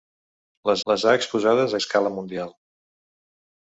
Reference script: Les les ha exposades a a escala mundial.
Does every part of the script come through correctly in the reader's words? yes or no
yes